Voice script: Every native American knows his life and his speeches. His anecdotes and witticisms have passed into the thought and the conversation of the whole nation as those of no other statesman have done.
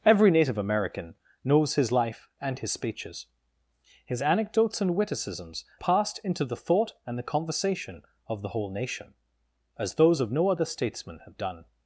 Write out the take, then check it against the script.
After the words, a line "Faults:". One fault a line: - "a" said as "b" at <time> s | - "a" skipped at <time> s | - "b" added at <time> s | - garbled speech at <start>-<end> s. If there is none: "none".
Every native American knows his life and his speeches. His anecdotes and witticisms passed into the thought and the conversation of the whole nation as those of no other statesman have done.
Faults:
- "have" skipped at 5.6 s